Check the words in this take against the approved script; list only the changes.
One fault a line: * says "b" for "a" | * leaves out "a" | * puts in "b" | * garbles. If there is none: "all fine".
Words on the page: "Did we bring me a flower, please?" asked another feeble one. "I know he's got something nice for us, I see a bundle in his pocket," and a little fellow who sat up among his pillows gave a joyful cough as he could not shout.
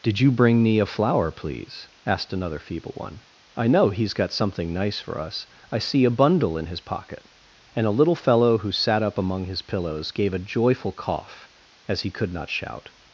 * says "you" for "we"